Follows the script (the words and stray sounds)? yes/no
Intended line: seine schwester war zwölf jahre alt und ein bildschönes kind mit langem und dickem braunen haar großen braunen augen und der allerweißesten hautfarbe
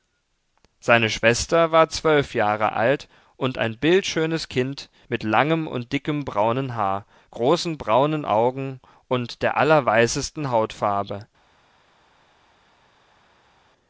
yes